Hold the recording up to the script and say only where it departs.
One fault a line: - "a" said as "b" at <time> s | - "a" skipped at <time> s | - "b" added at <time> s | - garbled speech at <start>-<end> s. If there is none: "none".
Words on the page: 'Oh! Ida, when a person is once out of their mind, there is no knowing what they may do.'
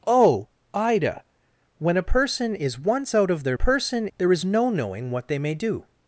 - "mind" said as "person" at 3.5 s